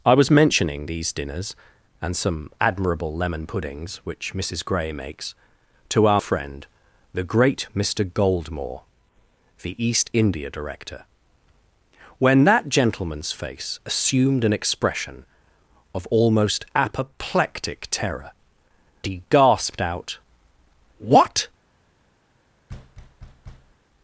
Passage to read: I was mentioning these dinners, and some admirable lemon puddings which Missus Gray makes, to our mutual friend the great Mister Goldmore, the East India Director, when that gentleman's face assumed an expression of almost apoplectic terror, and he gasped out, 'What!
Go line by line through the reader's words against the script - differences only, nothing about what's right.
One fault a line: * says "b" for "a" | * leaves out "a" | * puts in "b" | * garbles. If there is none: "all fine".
* leaves out "mutual"
* leaves out "and"